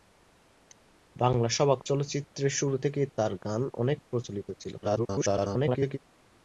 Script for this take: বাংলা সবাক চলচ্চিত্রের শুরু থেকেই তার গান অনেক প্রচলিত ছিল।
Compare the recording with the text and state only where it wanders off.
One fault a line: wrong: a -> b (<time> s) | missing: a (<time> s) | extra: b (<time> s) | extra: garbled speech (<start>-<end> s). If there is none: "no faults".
extra: garbled speech (4.8-6.0 s)